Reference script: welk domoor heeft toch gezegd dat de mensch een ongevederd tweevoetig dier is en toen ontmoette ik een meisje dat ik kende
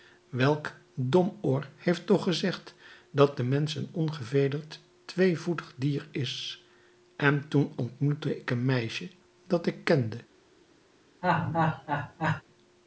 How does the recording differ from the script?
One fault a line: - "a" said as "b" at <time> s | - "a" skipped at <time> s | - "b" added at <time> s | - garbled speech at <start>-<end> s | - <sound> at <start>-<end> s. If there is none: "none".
- laugh at 11.2-12.4 s